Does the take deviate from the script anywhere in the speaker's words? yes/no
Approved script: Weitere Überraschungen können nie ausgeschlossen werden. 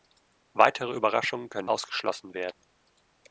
yes